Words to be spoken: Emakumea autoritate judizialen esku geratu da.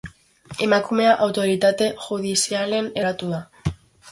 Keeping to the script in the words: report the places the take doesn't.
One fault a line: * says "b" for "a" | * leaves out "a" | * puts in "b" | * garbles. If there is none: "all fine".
* leaves out "esku"